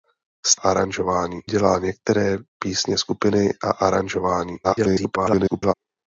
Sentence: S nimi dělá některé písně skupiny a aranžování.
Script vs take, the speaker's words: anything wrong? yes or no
yes